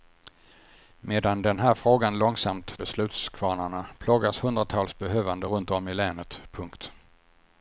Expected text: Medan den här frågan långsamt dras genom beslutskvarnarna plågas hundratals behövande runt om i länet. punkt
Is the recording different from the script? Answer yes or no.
yes